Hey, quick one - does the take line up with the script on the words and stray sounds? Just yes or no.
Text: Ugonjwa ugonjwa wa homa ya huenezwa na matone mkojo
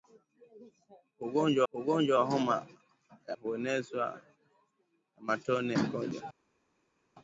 yes